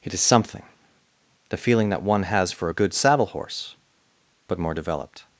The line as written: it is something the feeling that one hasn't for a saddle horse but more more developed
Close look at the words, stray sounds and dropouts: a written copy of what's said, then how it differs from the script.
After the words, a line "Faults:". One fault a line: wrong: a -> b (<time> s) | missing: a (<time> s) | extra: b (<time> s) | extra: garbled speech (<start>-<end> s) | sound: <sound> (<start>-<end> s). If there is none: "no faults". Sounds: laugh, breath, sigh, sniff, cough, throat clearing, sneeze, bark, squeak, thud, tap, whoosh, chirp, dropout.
it is something the feeling that one has for a good saddle horse but more developed
Faults:
wrong: hasn't -> has (2.2 s)
extra: good (2.7 s)
missing: more (4.7 s)